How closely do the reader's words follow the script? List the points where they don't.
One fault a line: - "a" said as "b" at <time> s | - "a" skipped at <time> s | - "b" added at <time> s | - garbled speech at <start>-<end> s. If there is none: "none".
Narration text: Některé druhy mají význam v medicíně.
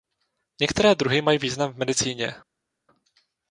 none